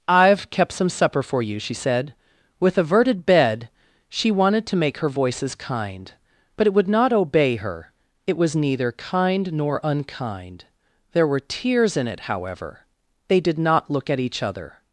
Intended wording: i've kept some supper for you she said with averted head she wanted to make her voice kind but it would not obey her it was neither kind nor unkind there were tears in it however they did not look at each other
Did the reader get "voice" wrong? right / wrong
wrong